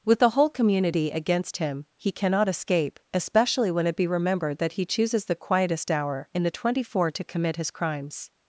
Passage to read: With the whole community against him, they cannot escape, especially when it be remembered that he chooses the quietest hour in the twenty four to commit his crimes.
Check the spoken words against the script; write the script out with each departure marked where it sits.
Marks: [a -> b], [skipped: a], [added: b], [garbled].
With the whole community against him, [they -> he] cannot escape, especially when it be remembered that he chooses the quietest hour in the twenty four to commit his crimes.